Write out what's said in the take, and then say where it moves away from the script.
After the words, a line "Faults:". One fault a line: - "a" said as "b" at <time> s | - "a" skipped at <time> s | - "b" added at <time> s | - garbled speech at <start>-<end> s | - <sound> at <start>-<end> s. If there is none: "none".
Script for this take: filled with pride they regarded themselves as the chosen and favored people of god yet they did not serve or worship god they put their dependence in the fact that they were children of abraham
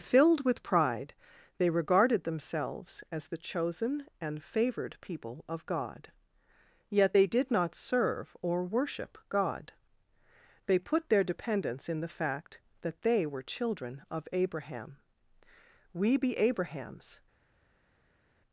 filled with pride they regarded themselves as the chosen and favored people of god yet they did not serve or worship god they put their dependence in the fact that they were children of abraham we be abraham's
Faults:
- "we be abraham's" added at 15.9 s